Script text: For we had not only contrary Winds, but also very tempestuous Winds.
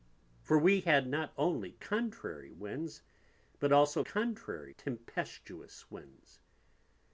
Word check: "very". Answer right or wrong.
wrong